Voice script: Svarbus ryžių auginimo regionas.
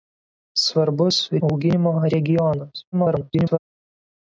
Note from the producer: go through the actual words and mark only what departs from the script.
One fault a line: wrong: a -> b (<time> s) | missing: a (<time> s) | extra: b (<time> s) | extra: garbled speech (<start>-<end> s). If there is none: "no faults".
missing: ryžių (1.2 s)
extra: garbled speech (2.9-3.6 s)